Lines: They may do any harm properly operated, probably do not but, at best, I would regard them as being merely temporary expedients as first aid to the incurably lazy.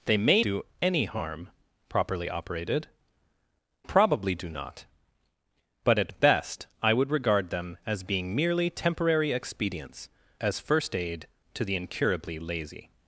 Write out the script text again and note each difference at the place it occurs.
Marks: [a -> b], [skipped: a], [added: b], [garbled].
They may do any harm properly operated, probably do not but, at best, I would regard them as being merely temporary expedients as first aid to the incurably lazy.